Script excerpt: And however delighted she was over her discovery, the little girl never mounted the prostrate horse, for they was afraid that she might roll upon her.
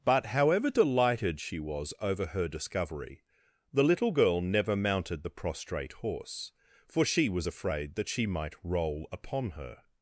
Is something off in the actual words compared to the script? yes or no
yes